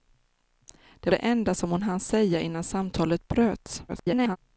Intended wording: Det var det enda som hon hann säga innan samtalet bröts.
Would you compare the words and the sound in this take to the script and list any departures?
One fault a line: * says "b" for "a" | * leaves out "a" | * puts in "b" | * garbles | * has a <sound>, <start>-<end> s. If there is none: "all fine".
* leaves out "var"
* garbles